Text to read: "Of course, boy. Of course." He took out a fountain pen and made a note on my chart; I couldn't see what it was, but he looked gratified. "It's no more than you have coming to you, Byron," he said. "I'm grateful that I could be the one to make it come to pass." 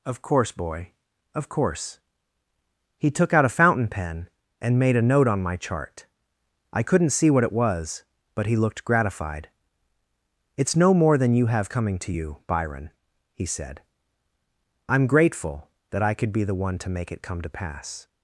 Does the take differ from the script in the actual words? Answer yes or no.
no